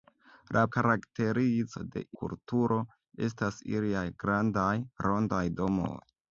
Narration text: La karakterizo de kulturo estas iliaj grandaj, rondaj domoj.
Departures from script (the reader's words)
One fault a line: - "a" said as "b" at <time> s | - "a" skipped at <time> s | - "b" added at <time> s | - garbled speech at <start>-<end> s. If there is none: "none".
none